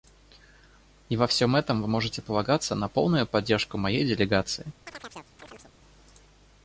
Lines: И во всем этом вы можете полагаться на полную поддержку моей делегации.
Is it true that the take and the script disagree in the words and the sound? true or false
true